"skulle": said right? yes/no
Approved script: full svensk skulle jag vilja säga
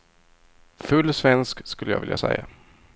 yes